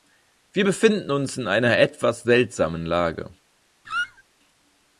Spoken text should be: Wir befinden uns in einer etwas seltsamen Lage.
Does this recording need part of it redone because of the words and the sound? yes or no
yes